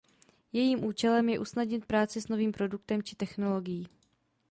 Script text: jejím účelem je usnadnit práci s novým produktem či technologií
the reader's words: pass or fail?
pass